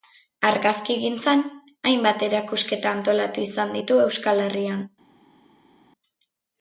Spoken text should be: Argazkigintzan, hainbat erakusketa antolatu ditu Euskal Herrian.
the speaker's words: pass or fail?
fail